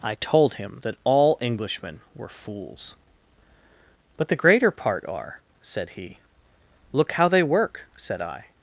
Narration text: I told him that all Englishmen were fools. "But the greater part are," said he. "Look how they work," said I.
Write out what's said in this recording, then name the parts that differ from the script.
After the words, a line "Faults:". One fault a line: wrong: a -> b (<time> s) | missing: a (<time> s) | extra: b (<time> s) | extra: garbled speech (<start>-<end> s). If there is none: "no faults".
I told him that all Englishmen were fools. "But the greater part are," said he. "Look how they work," said I.
Faults:
no faults